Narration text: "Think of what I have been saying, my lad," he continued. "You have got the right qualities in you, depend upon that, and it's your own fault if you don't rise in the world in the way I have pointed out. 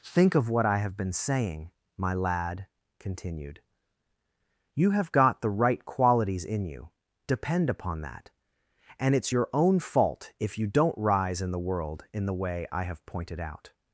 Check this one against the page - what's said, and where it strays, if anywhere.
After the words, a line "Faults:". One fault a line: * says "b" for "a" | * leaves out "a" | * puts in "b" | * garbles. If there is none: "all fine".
"Think of what I have been saying, my lad," continued. "You have got the right qualities in you, depend upon that, and it's your own fault if you don't rise in the world in the way I have pointed out.
Faults:
* leaves out "he"